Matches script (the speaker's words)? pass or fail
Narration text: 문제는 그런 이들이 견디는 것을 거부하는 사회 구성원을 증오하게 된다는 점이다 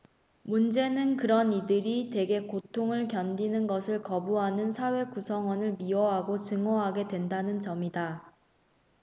fail